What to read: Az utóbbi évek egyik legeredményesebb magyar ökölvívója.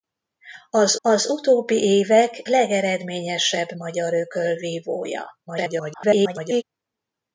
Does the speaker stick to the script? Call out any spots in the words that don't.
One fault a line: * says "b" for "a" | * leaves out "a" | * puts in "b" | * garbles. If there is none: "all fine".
* puts in "az"
* leaves out "egyik"
* garbles